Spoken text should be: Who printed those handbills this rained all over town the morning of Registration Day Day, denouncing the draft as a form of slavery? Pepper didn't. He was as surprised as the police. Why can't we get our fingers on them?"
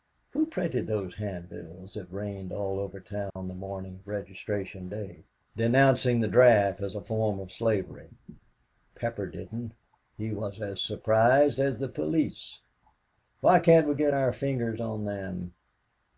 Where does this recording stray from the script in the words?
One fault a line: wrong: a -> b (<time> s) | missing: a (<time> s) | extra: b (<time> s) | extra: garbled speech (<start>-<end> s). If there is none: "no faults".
wrong: this -> that (1.9 s)
missing: Day (5.2 s)